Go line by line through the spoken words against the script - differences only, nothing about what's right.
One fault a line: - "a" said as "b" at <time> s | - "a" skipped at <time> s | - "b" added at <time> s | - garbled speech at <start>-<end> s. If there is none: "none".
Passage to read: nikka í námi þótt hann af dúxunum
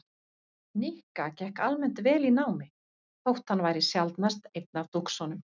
- "gekk almennt vel" added at 1.4 s
- "væri sjaldnast einn" added at 3.7 s